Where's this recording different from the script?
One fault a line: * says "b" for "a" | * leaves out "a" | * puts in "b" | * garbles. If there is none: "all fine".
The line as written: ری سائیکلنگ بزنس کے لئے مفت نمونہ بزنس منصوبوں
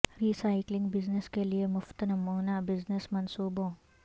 all fine